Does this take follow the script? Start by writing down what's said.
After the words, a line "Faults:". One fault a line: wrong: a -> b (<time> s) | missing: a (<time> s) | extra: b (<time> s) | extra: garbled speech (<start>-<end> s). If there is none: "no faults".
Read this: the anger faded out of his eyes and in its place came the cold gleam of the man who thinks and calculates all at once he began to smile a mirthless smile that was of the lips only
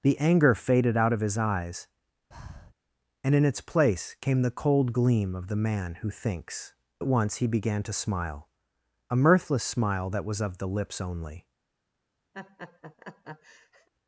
the anger faded out of his eyes and in its place came the cold gleam of the man who thinks at once he began to smile a mirthless smile that was of the lips only
Faults:
missing: and calculates all (6.7 s)